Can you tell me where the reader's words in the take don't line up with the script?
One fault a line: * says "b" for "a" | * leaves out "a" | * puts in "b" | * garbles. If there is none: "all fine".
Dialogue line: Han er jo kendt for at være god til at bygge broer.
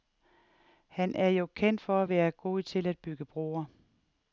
all fine